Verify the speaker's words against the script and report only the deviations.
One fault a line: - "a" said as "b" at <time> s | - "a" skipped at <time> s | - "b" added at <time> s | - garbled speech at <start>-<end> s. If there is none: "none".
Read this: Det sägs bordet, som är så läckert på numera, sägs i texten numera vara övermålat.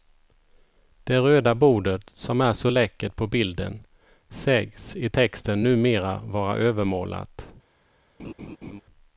- "sägs" said as "röda" at 1.2 s
- "numera" said as "bilden" at 3.3 s